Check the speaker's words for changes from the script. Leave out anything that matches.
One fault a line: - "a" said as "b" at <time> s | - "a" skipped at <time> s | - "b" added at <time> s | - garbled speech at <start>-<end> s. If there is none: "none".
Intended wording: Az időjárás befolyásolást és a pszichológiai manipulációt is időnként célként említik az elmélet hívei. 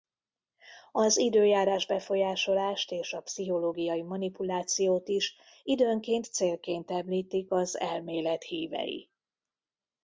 none